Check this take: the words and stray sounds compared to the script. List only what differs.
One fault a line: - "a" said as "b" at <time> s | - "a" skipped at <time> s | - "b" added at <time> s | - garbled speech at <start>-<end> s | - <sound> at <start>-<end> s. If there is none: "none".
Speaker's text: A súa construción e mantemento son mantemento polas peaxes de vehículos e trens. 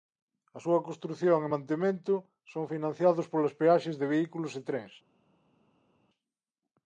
- "mantemento" said as "financiados" at 2.7 s